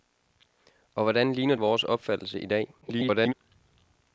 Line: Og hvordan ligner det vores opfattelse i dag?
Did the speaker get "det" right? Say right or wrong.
wrong